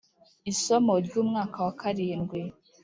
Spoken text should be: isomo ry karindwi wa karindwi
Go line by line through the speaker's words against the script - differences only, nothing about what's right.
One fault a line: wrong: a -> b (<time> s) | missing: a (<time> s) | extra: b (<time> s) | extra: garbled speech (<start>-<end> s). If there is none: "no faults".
wrong: karindwi -> umwaka (1.2 s)